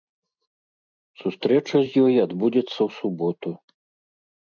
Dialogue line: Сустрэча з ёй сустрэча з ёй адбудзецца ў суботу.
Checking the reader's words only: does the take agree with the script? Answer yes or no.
no